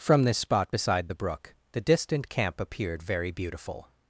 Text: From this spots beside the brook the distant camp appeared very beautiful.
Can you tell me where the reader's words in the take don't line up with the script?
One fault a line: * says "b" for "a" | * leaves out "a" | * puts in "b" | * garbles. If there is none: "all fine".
* says "spot" for "spots"